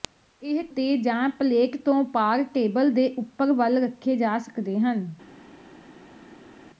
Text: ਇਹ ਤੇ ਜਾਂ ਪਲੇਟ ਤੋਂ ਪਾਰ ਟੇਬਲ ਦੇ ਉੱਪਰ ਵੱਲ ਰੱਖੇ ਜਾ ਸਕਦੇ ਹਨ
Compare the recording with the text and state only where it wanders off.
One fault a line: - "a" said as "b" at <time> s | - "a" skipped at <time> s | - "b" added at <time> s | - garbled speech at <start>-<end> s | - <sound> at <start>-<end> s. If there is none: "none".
none